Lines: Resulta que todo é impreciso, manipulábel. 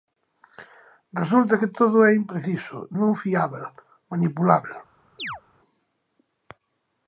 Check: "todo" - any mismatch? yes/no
no